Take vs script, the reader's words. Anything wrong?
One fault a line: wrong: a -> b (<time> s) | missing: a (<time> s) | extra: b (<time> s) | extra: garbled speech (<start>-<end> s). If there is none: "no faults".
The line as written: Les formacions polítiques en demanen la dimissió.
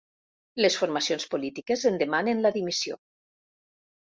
no faults